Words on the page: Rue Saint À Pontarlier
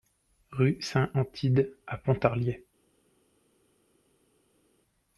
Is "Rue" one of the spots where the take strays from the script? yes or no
no